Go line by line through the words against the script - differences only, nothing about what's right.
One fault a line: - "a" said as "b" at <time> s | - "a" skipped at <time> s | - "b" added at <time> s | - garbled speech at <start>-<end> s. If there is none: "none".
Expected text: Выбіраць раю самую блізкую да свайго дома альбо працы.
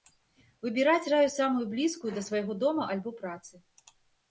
none